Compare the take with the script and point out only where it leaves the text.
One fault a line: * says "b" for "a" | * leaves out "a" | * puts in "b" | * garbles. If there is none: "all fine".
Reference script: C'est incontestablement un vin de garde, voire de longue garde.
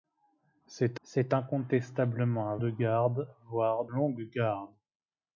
* puts in "c'est"
* leaves out "vin"
* leaves out "de"